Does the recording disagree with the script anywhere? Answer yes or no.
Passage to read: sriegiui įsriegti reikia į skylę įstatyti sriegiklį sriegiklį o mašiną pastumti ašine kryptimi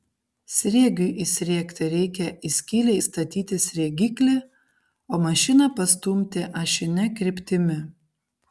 yes